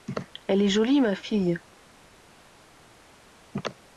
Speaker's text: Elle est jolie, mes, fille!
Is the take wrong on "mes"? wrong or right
wrong